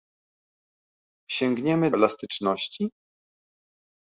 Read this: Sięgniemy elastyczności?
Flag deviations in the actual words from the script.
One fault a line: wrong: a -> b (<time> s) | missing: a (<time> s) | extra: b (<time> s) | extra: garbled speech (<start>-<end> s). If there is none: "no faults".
no faults